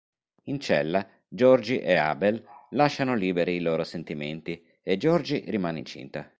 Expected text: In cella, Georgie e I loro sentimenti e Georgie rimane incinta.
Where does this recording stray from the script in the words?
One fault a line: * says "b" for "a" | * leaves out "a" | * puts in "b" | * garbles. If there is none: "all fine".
* puts in "Abel lasciano liberi"